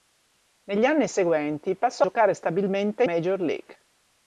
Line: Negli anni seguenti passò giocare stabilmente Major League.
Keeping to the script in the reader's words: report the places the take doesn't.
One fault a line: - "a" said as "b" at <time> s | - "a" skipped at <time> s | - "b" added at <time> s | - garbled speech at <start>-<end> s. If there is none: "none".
none